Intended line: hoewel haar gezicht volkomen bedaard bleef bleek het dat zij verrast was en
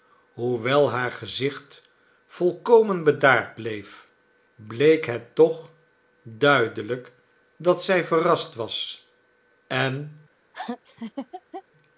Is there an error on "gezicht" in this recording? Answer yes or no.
no